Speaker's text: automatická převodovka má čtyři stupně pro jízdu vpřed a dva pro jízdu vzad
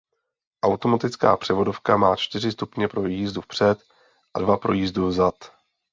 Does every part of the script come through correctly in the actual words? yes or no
yes